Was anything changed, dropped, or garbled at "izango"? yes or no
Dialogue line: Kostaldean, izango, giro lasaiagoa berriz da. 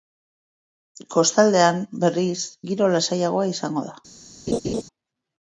yes